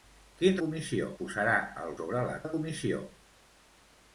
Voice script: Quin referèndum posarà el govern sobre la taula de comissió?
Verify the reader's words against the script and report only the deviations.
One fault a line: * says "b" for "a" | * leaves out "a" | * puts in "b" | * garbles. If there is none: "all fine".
* says "comissió" for "referèndum"
* leaves out "govern"
* leaves out "taula"